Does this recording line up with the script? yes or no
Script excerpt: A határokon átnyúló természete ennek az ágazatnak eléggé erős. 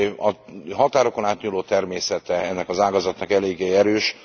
yes